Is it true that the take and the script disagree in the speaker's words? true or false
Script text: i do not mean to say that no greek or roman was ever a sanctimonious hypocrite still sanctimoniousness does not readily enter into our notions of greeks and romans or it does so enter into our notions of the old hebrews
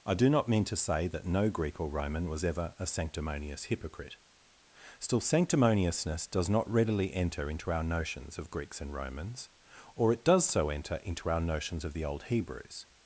false